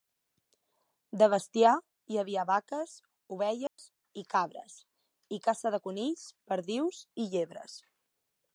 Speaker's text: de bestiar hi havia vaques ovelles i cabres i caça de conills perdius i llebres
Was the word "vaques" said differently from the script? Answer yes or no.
no